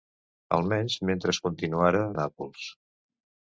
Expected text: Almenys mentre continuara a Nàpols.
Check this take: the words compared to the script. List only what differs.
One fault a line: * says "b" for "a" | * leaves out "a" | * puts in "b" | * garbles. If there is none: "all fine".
all fine